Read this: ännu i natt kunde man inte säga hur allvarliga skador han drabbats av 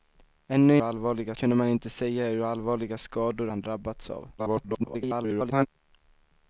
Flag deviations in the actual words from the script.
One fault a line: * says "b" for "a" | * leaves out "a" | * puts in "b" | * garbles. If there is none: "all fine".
* says "allvarliga" for "natt"
* garbles